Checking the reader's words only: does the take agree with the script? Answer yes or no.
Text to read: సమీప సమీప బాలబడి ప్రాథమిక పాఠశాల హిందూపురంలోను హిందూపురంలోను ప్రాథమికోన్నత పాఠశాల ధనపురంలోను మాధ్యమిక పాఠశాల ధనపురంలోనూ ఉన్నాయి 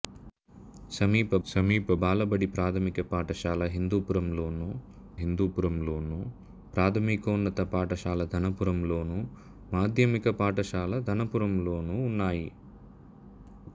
yes